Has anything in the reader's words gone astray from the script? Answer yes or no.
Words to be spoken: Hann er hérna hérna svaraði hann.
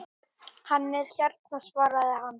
yes